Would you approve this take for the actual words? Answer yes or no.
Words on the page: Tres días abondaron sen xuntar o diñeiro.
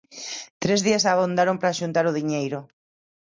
no